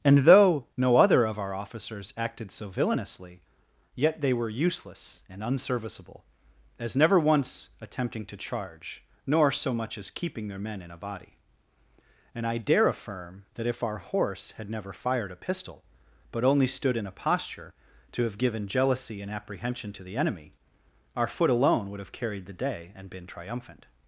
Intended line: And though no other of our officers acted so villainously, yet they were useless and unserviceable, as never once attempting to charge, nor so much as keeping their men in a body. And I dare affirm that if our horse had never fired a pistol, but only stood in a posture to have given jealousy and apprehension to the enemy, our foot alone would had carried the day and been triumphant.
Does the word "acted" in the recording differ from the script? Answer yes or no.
no